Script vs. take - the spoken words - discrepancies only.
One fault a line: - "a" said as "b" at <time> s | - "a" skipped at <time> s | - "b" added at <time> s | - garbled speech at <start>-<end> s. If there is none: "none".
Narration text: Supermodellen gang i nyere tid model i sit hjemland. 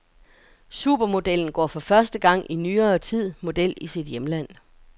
- "går for første" added at 1.5 s